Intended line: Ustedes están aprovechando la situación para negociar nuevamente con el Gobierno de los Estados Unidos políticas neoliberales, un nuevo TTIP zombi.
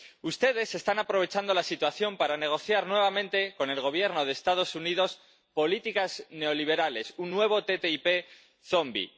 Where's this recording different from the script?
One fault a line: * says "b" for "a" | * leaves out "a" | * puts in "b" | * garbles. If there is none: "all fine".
all fine